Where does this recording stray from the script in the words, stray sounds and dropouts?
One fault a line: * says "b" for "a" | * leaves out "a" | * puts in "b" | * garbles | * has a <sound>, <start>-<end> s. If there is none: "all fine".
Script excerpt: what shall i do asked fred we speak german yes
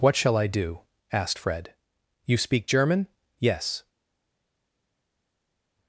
* says "you" for "we"